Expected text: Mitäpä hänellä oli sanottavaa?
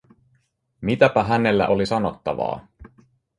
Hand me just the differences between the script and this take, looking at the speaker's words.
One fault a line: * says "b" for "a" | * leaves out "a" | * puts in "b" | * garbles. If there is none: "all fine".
all fine